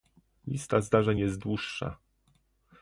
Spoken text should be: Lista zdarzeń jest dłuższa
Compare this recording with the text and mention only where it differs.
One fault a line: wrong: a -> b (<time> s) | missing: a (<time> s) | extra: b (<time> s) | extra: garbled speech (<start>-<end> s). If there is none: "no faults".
no faults